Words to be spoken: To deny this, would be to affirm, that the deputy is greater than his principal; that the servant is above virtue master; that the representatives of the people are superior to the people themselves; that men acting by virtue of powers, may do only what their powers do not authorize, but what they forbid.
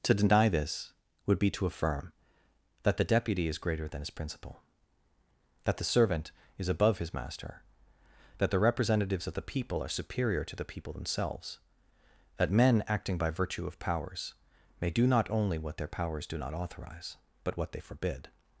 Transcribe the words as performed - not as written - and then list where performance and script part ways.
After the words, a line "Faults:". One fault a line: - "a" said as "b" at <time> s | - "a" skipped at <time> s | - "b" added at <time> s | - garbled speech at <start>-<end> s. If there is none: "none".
To deny this, would be to affirm, that the deputy is greater than his principal; that the servant is above his master; that the representatives of the people are superior to the people themselves; that men acting by virtue of powers, may do not only what their powers do not authorize, but what they forbid.
Faults:
- "virtue" said as "his" at 7.0 s
- "not" added at 15.1 s